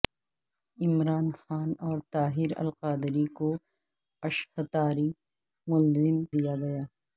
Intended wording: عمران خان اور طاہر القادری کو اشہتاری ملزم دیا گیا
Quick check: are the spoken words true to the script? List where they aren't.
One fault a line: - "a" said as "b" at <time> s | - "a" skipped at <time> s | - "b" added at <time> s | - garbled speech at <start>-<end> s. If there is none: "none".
none